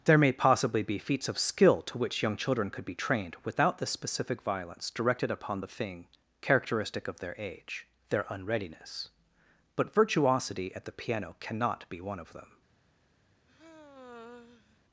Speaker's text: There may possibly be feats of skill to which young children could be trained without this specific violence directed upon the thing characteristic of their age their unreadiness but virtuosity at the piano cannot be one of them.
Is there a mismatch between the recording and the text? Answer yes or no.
yes